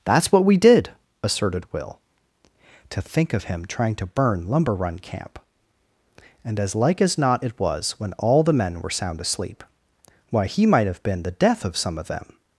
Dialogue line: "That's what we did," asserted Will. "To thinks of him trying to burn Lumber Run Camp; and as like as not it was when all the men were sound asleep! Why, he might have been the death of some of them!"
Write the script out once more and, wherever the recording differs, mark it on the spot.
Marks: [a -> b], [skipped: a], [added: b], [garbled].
"That's what we did," asserted Will. "To [thinks -> think] of him trying to burn Lumber Run Camp; and as like as not it was when all the men were sound asleep! Why, he might have been the death of some of them!"